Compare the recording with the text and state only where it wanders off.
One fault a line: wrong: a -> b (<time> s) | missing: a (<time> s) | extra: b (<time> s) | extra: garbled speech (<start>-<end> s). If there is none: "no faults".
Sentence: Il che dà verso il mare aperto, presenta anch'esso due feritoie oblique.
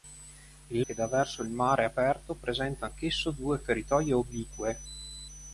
no faults